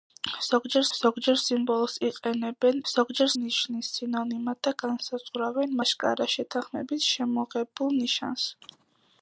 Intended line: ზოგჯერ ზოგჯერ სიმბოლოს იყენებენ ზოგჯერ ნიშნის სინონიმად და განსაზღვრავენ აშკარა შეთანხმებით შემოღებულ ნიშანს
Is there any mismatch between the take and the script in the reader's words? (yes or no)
no